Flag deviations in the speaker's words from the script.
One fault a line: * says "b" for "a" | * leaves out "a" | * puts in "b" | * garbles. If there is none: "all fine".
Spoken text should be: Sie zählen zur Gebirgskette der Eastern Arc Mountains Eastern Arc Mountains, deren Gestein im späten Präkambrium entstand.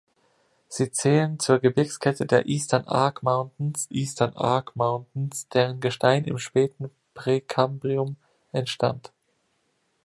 all fine